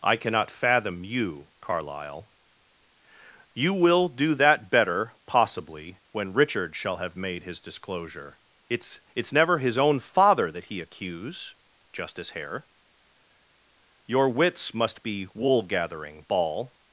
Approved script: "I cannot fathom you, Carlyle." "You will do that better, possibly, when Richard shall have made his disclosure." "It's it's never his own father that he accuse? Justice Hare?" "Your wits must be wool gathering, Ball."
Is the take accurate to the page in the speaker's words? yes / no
yes